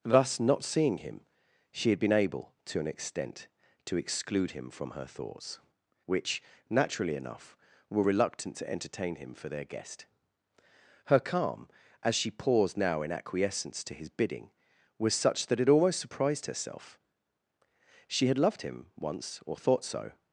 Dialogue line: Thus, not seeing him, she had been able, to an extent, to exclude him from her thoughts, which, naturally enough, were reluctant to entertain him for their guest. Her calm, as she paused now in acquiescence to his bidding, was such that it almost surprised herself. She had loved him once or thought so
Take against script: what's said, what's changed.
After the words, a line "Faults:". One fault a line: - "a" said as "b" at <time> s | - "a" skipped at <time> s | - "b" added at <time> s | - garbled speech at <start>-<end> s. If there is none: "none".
Thus, not seeing him, she had been able, to an extent, to exclude him from her thoughts, which, naturally enough, were reluctant to entertain him for their guest. Her calm, as she paused now in acquiescence to his bidding, was such that it almost surprised herself. She had loved him once or thought so
Faults:
none